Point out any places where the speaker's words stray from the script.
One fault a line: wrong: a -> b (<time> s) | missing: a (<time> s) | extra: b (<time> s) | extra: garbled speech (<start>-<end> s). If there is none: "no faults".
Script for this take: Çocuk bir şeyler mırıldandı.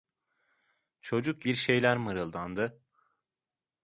no faults